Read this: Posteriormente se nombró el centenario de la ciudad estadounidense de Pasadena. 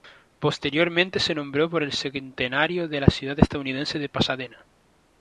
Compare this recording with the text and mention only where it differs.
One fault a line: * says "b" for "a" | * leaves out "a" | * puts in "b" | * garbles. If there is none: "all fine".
* puts in "por"